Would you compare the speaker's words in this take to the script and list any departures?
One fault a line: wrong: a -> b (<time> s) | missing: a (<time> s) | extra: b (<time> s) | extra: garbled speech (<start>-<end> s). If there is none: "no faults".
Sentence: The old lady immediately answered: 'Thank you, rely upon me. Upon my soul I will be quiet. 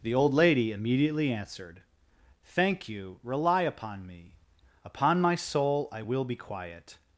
no faults